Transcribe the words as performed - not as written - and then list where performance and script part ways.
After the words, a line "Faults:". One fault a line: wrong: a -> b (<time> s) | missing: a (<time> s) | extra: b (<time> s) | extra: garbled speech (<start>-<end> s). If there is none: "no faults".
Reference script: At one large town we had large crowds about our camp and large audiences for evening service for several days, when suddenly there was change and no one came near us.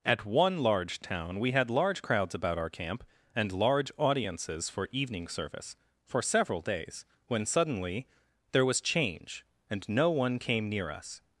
At one large town we had large crowds about our camp and large audiences for evening service for several days, when suddenly there was change and no one came near us.
Faults:
no faults